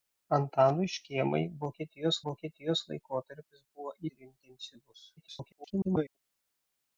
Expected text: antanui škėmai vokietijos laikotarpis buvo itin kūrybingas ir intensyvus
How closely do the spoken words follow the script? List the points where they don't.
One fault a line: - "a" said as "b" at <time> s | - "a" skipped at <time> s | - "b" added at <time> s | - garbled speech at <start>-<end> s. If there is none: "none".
- "vokietijos" added at 2.3 s
- "itin kūrybingas" skipped at 3.9 s
- garbled speech at 5.2-6.2 s